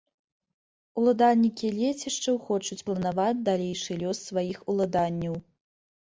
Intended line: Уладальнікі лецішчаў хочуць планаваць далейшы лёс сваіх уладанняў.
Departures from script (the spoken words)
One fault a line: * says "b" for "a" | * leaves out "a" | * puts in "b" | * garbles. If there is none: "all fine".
all fine